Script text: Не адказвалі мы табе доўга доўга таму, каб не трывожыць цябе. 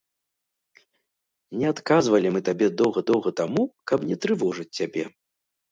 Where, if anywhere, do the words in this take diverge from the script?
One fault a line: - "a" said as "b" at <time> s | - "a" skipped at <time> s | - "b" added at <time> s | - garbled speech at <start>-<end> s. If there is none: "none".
none